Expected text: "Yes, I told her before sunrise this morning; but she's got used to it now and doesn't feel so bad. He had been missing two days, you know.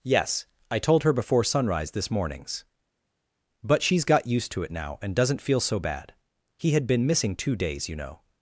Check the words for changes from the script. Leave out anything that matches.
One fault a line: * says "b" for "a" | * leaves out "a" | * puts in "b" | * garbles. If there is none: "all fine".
* says "mornings" for "morning"